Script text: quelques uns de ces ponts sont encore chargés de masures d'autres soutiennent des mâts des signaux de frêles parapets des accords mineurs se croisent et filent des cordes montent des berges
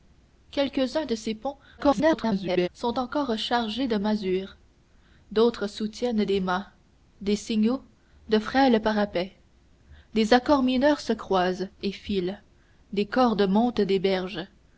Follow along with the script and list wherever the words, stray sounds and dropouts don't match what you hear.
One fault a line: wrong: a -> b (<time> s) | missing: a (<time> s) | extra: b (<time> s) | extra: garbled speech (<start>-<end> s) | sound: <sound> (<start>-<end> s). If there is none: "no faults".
extra: garbled speech (1.8-2.7 s)